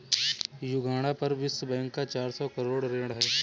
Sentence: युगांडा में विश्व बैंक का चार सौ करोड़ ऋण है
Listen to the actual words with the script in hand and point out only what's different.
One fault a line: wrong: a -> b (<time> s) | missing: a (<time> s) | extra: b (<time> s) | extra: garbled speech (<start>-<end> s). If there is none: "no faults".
wrong: में -> पर (1.1 s)